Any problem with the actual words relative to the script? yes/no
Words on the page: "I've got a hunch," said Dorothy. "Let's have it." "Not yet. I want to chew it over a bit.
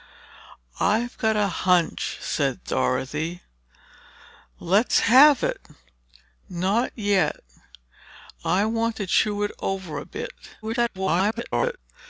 yes